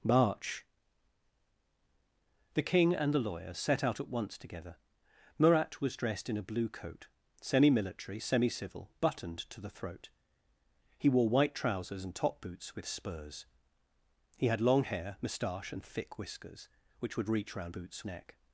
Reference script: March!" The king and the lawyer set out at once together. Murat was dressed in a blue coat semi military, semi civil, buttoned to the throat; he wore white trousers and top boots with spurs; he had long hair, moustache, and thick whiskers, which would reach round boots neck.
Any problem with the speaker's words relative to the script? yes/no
no